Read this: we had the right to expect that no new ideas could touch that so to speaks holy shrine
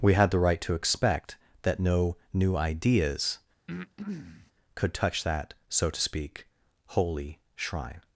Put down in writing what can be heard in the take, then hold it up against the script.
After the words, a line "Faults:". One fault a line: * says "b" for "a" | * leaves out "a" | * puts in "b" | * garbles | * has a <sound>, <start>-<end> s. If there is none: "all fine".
we had the right to expect that no new ideas could touch that so to speak holy shrine
Faults:
* has a breath, 3.7-4.5 s
* says "speak" for "speaks"